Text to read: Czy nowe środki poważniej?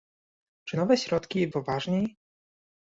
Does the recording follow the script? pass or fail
pass